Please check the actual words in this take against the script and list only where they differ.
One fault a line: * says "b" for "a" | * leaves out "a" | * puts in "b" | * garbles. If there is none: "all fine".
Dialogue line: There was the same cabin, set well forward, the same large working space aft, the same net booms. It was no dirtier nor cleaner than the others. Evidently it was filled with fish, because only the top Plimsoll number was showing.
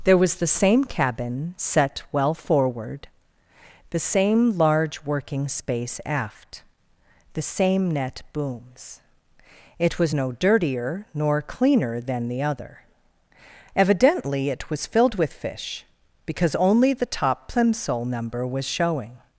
* says "other" for "others"